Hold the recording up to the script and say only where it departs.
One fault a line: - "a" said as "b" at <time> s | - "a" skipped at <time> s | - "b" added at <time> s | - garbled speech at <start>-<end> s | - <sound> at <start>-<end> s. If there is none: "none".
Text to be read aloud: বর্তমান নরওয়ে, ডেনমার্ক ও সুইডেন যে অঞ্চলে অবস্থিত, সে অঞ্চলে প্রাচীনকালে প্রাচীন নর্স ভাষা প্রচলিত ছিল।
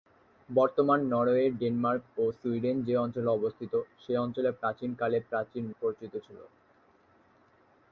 - "নর্স ভাষা" skipped at 5.6 s